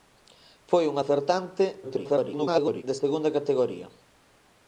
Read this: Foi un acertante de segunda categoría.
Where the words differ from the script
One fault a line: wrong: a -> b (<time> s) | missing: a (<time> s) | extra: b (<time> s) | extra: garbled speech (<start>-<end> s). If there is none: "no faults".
extra: garbled speech (1.8-2.8 s)